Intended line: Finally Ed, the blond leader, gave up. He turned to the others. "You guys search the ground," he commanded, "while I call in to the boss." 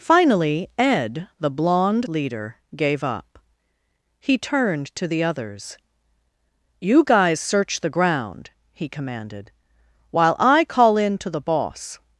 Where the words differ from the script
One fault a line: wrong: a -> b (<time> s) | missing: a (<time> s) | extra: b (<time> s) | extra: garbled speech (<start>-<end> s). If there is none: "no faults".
no faults